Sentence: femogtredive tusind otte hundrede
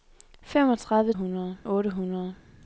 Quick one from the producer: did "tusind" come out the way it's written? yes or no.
no